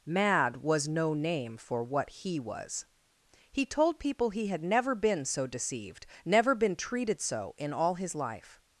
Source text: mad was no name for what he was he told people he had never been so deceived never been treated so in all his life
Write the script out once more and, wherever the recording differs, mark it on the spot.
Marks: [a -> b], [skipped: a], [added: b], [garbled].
mad was no name for what he was he told people he had never been so deceived never been treated so in all his life